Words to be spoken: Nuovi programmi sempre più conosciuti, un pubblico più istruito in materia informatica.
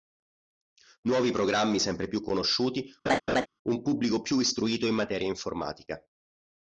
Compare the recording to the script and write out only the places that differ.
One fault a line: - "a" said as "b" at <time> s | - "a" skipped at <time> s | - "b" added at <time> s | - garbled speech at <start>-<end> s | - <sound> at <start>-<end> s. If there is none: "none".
- laugh at 3.1-3.5 s